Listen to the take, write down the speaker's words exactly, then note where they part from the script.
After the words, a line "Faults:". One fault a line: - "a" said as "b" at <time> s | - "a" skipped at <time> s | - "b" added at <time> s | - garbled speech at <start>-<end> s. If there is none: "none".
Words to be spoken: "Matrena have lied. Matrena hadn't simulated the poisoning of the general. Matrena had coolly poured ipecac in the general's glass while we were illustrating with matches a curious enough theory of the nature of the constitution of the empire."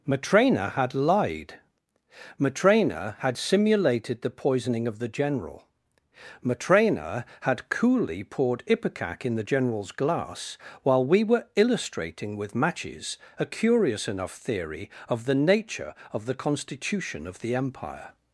"Matrena had lied. Matrena had simulated the poisoning of the general. Matrena had coolly poured ipecac in the general's glass while we were illustrating with matches a curious enough theory of the nature of the constitution of the empire."
Faults:
- "have" said as "had" at 0.7 s
- "hadn't" said as "had" at 3.2 s